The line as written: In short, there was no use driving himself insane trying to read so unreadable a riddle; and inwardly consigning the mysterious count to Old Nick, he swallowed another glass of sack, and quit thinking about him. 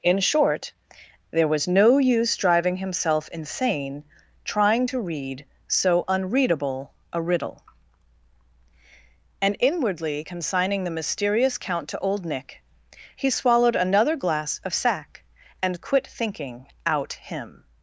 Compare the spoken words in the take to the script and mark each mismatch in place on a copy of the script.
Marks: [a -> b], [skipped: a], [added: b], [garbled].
In short, there was no use driving himself insane trying to read so unreadable a riddle; and inwardly consigning the mysterious count to Old Nick, he swallowed another glass of sack, and quit thinking [about -> out] him.